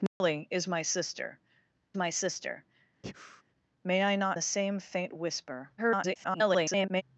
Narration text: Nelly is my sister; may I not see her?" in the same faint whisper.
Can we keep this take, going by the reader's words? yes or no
no